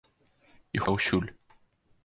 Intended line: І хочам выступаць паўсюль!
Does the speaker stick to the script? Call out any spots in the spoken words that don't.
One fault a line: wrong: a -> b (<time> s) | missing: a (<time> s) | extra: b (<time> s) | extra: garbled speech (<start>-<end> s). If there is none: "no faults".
missing: хочам выступаць (0.8 s)